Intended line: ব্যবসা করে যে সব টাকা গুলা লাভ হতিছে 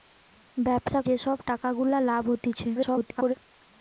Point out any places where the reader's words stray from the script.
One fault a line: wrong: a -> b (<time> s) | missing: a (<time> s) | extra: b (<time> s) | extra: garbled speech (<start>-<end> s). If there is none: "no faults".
missing: করে (1.0 s)
extra: garbled speech (2.7-3.3 s)